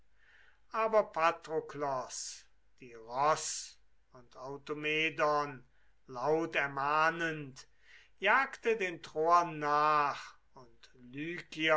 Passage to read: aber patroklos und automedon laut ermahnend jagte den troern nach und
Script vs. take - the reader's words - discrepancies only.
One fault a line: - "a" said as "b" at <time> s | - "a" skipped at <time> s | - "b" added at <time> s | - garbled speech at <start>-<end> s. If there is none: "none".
- "die ross" added at 2.8 s